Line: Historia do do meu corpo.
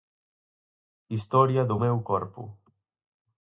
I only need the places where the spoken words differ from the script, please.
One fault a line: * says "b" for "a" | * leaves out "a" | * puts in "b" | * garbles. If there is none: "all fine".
* leaves out "do"